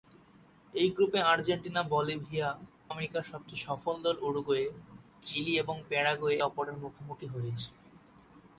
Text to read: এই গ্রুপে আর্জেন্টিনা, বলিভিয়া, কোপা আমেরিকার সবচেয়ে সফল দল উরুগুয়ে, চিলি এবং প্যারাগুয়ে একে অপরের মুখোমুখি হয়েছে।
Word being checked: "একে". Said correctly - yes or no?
no